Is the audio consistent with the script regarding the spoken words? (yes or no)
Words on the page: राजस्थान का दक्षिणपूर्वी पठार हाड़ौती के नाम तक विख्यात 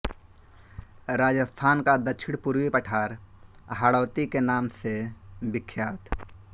no